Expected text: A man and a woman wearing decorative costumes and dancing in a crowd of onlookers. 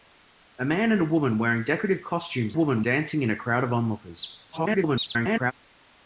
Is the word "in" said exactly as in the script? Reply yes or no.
yes